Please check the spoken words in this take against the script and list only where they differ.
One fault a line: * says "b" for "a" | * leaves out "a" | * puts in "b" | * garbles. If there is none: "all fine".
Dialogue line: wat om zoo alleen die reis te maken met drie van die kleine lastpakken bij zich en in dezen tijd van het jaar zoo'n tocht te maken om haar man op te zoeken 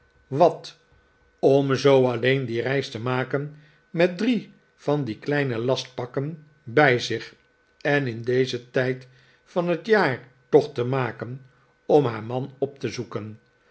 * leaves out "zoo'n"